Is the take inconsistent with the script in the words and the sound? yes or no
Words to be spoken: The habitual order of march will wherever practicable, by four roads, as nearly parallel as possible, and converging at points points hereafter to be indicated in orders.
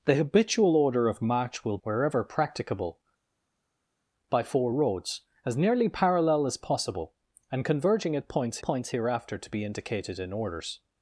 no